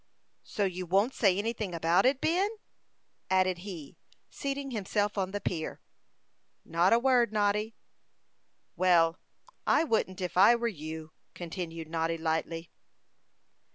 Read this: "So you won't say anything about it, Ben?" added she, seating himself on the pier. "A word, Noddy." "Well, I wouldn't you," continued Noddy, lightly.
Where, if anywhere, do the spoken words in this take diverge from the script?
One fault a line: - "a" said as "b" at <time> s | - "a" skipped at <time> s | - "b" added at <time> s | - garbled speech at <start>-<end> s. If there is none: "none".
- "she" said as "he" at 3.6 s
- "Not" added at 6.6 s
- "if I were" added at 10.2 s